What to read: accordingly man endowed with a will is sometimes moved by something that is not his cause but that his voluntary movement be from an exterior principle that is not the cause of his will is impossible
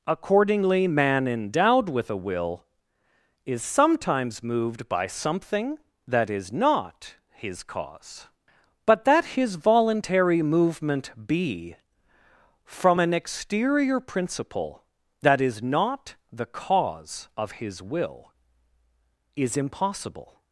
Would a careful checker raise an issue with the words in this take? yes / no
no